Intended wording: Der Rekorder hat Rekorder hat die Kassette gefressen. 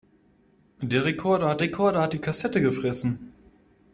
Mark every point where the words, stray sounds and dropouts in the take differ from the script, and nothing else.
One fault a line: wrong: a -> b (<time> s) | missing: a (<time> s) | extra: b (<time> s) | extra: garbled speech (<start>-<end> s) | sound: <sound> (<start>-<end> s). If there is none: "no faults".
no faults